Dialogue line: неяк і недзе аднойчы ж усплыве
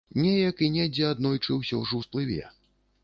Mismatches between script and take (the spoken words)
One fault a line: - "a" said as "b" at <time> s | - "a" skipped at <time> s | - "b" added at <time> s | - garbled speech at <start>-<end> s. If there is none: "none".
- "ўсё" added at 1.6 s